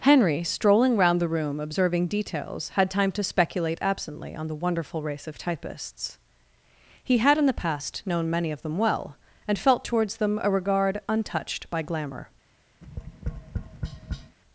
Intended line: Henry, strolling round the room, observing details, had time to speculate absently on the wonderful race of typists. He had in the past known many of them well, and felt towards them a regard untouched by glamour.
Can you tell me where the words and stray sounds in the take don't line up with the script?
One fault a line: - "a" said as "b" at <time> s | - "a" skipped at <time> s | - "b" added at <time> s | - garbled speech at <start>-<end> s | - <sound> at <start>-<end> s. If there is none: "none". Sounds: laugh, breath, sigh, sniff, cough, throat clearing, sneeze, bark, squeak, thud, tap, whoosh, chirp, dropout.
- tap at 12.8-14.4 s